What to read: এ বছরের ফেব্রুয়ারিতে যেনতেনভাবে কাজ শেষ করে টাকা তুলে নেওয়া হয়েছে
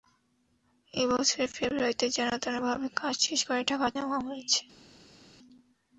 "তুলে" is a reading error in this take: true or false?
true